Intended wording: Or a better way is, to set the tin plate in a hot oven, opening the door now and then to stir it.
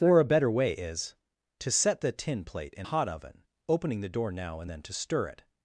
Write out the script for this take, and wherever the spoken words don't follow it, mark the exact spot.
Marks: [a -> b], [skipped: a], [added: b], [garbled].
Or a better way is, to set the tin plate in [skipped: a] hot oven, opening the door now and then to stir it.